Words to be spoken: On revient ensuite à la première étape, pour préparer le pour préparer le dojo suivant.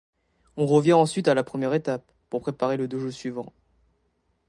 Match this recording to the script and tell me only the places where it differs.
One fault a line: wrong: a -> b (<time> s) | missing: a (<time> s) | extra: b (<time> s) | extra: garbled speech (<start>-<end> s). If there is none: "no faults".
missing: pour préparer le (2.9 s)